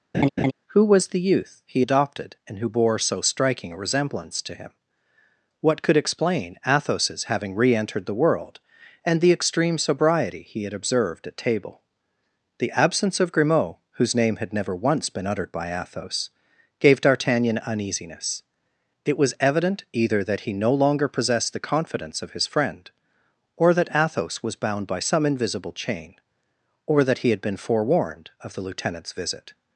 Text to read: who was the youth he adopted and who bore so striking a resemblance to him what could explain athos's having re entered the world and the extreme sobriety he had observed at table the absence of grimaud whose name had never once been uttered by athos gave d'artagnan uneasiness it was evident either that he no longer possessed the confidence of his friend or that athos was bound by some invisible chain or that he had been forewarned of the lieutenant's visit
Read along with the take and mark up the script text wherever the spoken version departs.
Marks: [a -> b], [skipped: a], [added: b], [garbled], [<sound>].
[laugh] who was the youth he adopted and who bore so striking a resemblance to him what could explain athos's having re entered the world and the extreme sobriety he had observed at table the absence of grimaud whose name had never once been uttered by athos gave d'artagnan uneasiness it was evident either that he no longer possessed the confidence of his friend or that athos was bound by some invisible chain or that he had been forewarned of the lieutenant's visit